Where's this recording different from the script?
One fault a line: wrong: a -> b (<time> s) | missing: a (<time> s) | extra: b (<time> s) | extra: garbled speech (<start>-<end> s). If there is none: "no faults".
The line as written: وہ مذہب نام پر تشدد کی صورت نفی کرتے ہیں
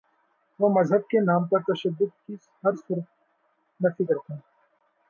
extra: کے (1.1 s)
extra: ہر (2.6 s)